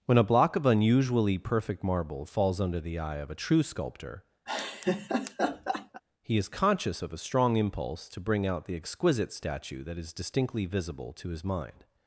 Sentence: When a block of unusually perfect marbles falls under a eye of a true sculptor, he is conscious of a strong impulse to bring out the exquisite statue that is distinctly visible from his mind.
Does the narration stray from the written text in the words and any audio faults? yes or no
yes